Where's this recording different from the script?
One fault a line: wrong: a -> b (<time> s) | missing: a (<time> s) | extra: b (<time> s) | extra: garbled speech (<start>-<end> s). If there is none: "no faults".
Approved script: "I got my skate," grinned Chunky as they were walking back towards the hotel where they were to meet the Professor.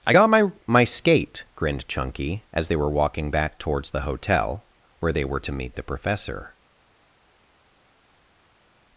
extra: my (0.6 s)